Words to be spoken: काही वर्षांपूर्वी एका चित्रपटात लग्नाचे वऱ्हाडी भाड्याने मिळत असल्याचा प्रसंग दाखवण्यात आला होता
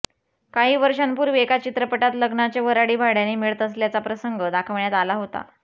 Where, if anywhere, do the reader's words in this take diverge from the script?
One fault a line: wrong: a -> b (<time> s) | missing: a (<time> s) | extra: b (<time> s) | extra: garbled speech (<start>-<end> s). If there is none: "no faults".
no faults